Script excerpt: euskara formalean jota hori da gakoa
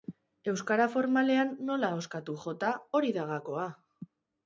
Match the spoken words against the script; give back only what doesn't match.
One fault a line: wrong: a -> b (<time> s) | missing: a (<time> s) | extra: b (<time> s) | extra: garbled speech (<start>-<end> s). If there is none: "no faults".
extra: nola ahoskatu (1.7 s)